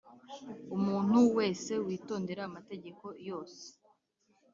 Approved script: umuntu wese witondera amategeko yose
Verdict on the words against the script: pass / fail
pass